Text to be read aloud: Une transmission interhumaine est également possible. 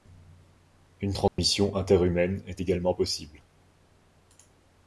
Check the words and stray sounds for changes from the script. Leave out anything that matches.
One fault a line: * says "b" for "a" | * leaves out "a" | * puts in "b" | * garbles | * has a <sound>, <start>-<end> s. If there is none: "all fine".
* has a dropout, 1.3-1.4 s